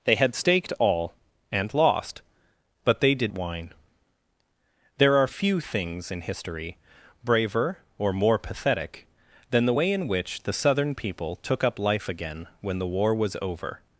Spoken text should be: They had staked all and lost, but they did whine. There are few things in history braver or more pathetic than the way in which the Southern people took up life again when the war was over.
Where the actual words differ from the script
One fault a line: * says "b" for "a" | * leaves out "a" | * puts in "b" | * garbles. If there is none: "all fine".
all fine